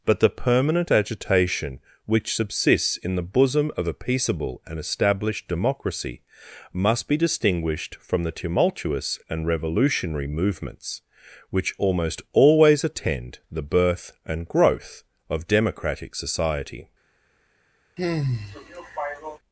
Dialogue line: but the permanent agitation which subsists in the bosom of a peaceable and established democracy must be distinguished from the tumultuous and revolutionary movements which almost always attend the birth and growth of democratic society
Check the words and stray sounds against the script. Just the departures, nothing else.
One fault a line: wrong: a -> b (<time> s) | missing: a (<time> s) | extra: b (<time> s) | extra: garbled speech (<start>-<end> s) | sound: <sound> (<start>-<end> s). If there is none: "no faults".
sound: sigh (18.0-19.4 s)